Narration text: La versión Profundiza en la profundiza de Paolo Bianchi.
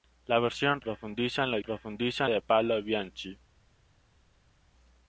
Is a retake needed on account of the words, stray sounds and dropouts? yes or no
no